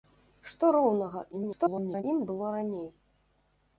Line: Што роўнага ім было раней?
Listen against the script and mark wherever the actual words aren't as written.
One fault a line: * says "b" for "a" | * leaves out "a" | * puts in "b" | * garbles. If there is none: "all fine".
* garbles